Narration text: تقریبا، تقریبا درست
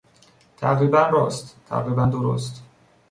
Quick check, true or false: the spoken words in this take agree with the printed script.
false